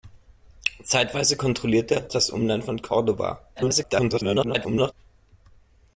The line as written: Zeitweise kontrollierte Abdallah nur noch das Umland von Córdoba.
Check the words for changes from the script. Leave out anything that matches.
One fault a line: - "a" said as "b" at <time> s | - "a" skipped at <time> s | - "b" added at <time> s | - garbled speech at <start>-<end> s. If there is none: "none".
- "Abdallah nur noch" skipped at 2.1 s
- garbled speech at 3.6-4.9 s